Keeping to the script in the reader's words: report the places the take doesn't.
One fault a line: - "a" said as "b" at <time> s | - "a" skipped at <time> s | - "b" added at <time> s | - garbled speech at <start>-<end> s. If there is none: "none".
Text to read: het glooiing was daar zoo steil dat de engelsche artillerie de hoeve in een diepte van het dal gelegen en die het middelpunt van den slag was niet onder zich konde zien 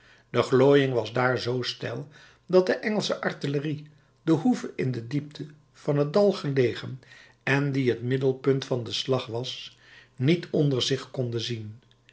- "het" said as "de" at 0.3 s
- "een" said as "de" at 4.9 s